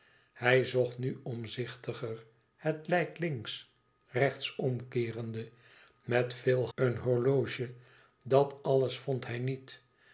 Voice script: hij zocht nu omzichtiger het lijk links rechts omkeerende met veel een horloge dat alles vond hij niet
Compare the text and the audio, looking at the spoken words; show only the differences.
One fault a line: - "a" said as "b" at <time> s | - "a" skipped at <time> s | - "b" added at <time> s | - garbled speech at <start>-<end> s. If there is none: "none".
none